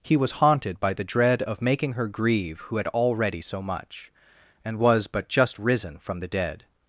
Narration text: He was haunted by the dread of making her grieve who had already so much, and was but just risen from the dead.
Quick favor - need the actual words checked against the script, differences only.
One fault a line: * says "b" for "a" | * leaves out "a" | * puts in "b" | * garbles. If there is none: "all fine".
all fine